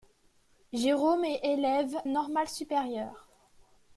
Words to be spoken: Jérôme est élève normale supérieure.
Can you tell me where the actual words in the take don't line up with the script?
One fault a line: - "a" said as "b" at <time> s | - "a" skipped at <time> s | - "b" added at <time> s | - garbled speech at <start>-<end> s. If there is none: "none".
none